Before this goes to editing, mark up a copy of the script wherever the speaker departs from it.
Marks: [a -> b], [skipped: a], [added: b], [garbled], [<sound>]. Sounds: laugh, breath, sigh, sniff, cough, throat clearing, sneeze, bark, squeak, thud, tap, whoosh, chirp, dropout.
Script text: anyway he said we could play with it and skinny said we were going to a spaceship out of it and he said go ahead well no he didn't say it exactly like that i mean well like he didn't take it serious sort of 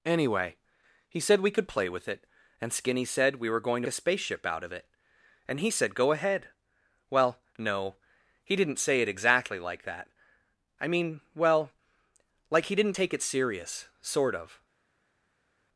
anyway he said we could play with it and skinny said we were going to a spaceship out of it and he said go ahead well no he didn't say it exactly like that i mean well like he didn't take it serious sort of